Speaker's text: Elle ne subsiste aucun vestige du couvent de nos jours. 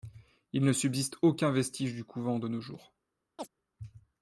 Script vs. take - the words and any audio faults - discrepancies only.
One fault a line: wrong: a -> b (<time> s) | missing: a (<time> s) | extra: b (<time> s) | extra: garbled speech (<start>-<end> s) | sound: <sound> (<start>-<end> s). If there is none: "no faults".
wrong: Elle -> Il (0.5 s)
sound: chirp (3.4-3.5 s)